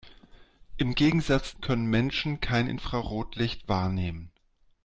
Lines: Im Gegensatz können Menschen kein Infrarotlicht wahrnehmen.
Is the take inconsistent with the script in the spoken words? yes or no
no